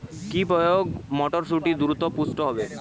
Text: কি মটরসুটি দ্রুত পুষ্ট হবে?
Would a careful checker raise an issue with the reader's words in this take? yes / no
yes